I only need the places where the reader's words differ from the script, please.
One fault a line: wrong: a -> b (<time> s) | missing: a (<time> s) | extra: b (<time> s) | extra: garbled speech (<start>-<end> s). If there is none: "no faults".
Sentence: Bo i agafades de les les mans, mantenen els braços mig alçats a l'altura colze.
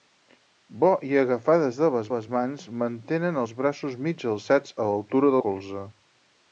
no faults